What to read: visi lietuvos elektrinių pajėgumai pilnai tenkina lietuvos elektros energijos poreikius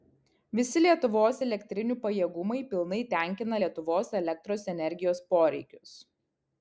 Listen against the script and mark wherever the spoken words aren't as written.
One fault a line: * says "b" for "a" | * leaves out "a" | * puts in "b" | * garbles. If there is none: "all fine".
all fine